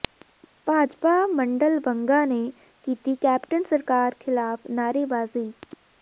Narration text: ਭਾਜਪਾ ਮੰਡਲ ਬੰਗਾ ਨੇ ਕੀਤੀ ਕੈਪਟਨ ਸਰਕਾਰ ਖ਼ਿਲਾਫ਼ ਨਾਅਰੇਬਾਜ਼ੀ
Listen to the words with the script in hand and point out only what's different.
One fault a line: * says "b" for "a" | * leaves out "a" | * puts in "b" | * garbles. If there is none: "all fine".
all fine